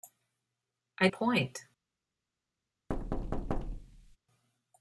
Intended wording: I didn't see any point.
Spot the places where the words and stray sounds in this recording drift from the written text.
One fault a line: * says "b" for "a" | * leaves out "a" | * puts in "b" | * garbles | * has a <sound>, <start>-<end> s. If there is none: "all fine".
* leaves out "didn't see any"
* has a thud, 2.9-4.2 s